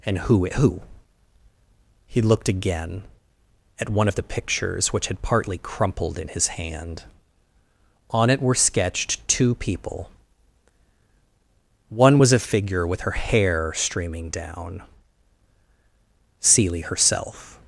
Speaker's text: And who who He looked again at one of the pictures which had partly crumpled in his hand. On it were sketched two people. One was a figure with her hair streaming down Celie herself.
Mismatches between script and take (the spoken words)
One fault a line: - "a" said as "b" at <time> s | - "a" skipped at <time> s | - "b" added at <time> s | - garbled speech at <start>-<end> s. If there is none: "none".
none